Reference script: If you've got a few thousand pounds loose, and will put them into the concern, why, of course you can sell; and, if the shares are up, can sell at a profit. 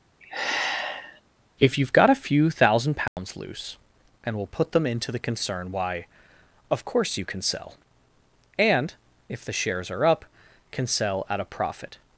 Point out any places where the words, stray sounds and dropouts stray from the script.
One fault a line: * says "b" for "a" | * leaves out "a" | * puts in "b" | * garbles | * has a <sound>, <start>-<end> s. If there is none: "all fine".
* has a sigh, 0.2-1.2 s
* has a dropout, 3.1-3.2 s